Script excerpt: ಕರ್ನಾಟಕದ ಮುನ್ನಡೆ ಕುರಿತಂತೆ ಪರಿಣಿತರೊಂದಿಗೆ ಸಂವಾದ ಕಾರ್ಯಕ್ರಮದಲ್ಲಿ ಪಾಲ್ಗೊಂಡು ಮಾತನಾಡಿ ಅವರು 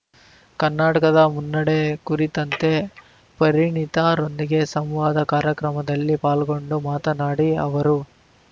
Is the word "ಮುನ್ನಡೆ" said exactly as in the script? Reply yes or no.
yes